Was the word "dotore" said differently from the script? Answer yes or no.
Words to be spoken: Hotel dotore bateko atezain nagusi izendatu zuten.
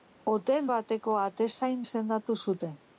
yes